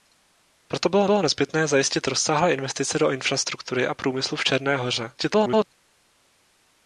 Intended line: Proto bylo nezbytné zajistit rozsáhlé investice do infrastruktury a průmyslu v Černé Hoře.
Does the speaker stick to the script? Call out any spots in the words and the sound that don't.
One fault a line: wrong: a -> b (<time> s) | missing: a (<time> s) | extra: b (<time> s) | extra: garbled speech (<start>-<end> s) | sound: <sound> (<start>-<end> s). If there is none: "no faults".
extra: bylo (1.0 s)
extra: garbled speech (5.2-5.6 s)